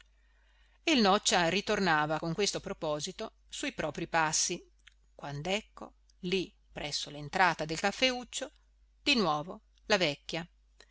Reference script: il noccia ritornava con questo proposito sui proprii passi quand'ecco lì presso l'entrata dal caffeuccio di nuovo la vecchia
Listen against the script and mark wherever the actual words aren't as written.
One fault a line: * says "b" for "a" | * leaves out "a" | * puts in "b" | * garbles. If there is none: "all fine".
* says "del" for "dal"